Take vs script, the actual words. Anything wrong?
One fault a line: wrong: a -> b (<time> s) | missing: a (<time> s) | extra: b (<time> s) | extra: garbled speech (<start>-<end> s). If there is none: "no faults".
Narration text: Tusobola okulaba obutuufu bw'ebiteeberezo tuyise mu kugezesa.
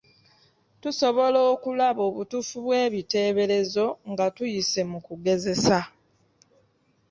extra: nga (4.1 s)